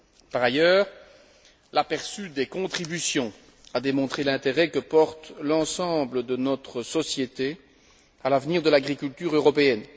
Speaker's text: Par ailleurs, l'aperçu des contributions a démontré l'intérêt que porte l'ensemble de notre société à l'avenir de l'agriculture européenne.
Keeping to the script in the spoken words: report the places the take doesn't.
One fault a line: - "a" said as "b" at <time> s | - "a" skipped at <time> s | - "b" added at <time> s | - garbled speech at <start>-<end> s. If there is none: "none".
none